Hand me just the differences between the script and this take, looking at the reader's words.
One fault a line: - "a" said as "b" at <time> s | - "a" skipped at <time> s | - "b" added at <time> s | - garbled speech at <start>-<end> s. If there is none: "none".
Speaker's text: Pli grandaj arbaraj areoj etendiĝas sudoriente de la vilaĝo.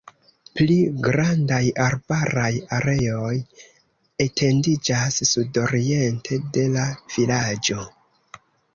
none